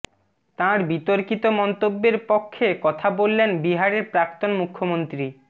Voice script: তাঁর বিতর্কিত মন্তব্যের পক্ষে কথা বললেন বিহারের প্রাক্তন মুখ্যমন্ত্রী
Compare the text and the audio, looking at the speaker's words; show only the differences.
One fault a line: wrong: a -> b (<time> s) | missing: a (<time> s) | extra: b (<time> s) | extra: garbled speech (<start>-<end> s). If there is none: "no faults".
no faults